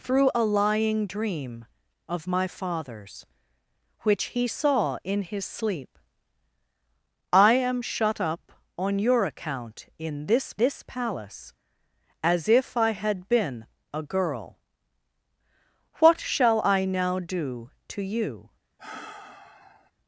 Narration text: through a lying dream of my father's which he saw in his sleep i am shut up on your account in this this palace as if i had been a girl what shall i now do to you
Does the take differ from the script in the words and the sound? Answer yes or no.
yes